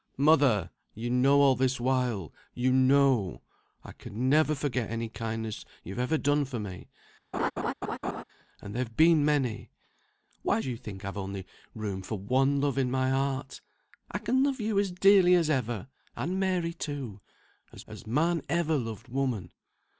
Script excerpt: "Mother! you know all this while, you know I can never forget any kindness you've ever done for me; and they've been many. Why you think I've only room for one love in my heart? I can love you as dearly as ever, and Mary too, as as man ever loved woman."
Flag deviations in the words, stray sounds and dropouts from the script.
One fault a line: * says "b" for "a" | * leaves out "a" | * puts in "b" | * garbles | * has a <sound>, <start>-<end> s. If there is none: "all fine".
* has a laugh, 7.3-8.2 s